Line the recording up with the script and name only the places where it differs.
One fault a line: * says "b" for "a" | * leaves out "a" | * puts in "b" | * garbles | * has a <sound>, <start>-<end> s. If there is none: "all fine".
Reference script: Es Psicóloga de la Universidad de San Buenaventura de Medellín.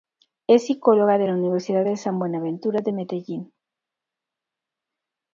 all fine